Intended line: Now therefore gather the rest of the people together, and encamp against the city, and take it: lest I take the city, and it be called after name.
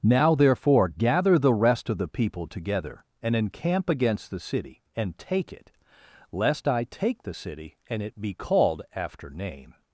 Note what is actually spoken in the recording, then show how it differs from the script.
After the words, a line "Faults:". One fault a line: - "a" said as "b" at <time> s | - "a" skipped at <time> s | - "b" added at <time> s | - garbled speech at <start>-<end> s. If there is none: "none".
Now therefore gather the rest of the people together, and encamp against the city, and take it: lest I take the city, and it be called after name.
Faults:
none